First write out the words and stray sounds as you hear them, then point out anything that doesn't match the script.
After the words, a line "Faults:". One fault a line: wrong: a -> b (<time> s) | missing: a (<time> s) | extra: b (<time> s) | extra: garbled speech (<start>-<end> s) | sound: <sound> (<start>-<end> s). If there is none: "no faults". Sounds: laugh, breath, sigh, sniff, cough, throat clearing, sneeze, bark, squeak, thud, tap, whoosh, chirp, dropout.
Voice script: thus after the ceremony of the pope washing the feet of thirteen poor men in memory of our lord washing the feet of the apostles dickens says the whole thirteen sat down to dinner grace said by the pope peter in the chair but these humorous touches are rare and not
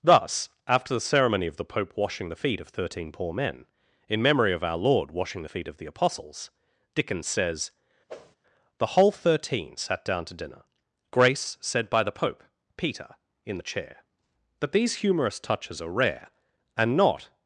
thus after the ceremony of the pope washing the feet of thirteen poor men in memory of our lord washing the feet of the apostles dickens says the whole thirteen sat down to dinner grace said by the pope peter in the chair but these humorous touches are rare and not
Faults:
sound: whoosh (8.1-8.4 s)